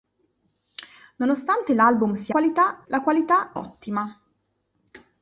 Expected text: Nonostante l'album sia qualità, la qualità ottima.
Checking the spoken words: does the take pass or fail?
pass